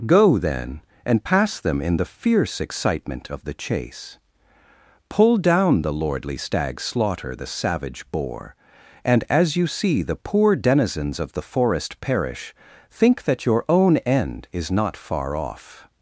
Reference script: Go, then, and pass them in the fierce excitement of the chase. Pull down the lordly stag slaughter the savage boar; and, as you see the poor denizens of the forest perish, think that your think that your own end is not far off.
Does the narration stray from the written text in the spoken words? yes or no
yes